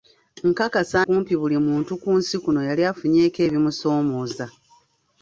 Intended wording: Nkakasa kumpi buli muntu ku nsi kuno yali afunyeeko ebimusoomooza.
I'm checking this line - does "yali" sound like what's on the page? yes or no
yes